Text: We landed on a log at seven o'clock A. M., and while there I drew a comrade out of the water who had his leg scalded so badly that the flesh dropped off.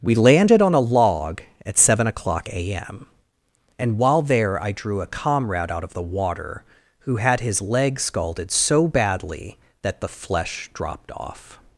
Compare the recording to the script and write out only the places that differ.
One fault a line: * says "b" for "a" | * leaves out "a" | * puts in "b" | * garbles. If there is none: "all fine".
all fine